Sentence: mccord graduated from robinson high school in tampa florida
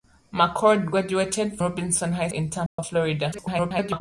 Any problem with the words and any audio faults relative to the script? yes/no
yes